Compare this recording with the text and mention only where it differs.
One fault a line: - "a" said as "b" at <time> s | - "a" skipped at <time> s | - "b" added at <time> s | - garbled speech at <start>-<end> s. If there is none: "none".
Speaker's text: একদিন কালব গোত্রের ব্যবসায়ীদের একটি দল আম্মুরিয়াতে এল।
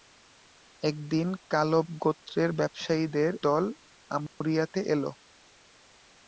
- "একটি" skipped at 3.3 s